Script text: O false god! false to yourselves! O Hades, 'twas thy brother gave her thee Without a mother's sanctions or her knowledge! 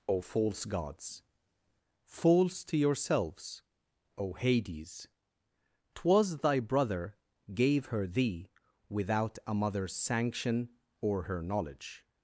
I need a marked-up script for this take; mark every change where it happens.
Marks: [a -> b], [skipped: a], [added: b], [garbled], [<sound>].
O false [god! -> gods] false to yourselves! O Hades, 'twas thy brother gave her thee Without a mother's [sanctions -> sanction] or her knowledge!